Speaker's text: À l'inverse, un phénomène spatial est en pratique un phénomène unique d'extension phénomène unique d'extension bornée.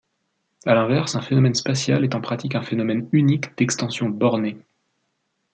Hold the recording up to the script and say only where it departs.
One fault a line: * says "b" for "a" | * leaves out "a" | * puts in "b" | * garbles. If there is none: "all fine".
* leaves out "phénomène unique d'extension"